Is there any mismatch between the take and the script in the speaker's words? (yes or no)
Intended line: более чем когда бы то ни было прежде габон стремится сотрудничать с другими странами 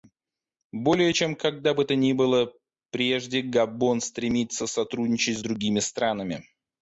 no